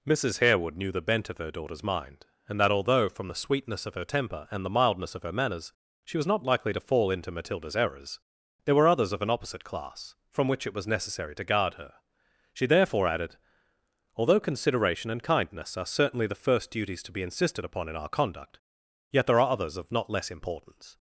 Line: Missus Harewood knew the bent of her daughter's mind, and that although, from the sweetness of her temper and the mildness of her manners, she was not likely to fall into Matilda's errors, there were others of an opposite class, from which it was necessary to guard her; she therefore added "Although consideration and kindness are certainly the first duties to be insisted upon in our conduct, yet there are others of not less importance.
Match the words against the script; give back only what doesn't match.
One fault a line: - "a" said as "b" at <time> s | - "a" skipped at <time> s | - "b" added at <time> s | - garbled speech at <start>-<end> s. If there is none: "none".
none